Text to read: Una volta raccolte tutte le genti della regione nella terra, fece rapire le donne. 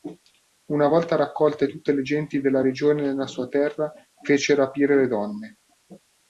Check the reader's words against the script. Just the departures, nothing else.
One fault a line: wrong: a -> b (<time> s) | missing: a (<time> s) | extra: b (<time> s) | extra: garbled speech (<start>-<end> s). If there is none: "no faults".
extra: sua (3.3 s)